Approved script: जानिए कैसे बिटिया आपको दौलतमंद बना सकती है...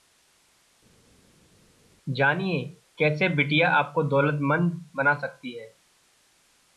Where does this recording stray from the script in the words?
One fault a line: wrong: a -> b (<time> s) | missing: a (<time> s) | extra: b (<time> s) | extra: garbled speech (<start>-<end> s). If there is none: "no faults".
no faults